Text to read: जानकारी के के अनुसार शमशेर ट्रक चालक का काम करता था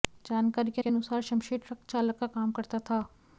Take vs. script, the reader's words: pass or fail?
pass